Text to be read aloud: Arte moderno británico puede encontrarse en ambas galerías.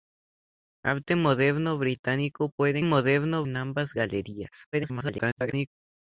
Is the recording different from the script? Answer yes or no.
yes